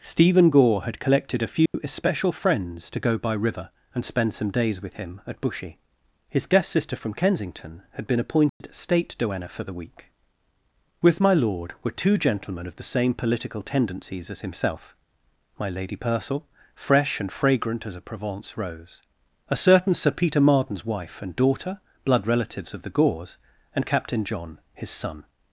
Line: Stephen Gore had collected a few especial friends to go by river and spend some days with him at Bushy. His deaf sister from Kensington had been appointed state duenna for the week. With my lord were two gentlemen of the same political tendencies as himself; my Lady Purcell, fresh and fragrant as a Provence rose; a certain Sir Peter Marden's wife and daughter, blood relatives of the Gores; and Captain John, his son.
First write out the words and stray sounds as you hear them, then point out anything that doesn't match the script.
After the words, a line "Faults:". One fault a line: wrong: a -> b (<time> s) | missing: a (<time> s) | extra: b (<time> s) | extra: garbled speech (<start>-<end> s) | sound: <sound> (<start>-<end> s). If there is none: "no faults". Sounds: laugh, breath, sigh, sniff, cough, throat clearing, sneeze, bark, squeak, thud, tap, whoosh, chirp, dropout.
Stephen Gore had collected a few especial friends to go by river and spend some days with him at Bushy. His deaf sister from Kensington had been appointed state duenna for the week. With my lord were two gentlemen of the same political tendencies as himself; my Lady Purcell, fresh and fragrant as a Provence rose; a certain Sir Peter Marden's wife and daughter, blood relatives of the Gores; and Captain John, his son.
Faults:
sound: dropout (1.7-1.7 s)
sound: dropout (8.5-8.6 s)